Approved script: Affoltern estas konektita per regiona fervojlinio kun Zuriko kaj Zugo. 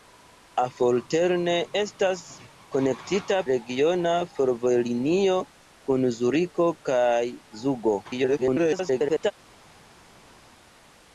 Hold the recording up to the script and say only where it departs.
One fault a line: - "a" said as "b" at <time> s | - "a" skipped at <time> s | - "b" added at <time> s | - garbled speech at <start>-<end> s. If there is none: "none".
- "per" skipped at 3.4 s
- garbled speech at 8.0-9.3 s